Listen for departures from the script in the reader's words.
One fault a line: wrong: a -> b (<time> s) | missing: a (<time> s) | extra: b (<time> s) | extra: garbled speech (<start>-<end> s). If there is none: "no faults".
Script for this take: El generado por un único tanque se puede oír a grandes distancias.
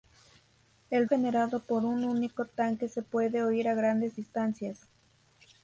no faults